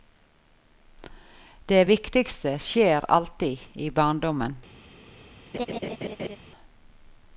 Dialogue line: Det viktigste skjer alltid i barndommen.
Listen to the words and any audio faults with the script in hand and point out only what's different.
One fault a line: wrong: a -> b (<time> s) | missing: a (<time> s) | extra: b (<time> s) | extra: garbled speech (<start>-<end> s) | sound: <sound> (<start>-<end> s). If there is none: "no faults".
sound: laugh (5.5-6.4 s)